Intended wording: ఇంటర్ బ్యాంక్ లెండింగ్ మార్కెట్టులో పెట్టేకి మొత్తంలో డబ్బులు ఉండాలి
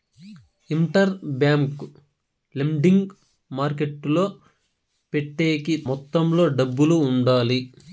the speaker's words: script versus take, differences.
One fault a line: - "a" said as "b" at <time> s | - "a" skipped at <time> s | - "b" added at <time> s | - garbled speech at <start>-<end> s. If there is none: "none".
none